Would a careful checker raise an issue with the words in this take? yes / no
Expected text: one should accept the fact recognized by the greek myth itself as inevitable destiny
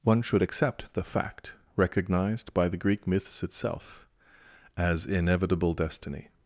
yes